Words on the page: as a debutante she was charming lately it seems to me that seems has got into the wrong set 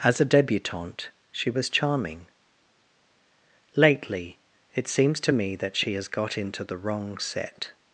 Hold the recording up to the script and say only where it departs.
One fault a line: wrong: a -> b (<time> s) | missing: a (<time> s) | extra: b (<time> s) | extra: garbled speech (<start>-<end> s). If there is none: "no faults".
wrong: seems -> she (5.8 s)